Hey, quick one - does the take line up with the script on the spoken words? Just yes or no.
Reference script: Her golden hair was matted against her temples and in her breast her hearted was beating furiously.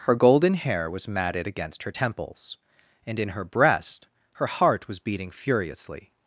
no